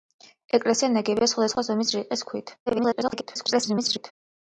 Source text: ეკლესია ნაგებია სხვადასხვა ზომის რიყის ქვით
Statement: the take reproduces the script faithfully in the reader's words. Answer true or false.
false